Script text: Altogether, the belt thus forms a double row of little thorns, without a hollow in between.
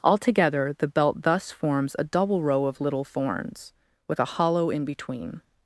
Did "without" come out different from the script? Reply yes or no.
yes